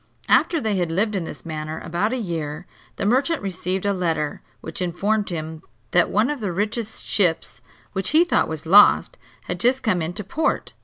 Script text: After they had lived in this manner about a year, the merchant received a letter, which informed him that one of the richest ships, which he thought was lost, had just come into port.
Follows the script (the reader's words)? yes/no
yes